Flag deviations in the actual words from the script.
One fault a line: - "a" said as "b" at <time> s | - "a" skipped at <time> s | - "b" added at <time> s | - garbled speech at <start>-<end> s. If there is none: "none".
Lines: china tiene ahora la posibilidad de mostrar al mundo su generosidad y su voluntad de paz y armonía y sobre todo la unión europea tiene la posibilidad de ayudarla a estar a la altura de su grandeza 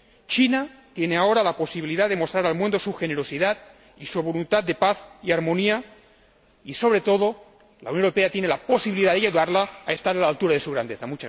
none